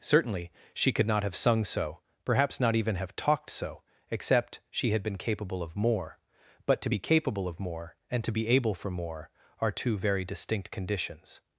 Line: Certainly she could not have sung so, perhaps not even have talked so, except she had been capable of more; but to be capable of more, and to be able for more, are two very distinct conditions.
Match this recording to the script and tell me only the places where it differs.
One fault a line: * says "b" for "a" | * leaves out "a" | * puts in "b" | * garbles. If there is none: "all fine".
all fine